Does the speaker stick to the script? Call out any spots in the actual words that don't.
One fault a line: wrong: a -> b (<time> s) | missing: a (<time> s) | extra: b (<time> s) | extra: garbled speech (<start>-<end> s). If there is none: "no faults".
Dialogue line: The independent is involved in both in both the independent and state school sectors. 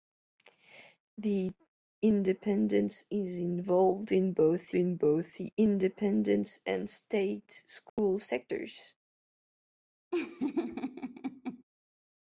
no faults